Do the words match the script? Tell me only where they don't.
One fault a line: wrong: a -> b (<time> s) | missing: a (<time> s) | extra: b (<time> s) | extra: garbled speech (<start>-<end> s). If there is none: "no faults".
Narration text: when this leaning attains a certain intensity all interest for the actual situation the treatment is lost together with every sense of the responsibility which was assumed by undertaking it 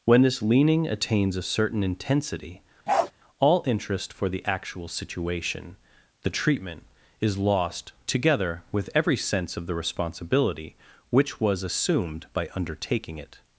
no faults